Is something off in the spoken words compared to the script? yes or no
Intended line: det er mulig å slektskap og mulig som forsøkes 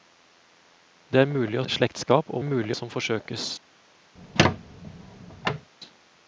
no